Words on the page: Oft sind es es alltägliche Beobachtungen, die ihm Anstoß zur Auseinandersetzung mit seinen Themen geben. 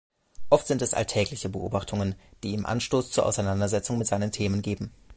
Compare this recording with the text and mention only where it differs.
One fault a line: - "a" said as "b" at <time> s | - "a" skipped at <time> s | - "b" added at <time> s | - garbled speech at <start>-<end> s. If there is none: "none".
- "es" skipped at 0.9 s